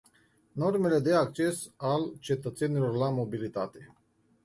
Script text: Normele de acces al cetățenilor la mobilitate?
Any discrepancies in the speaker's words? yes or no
no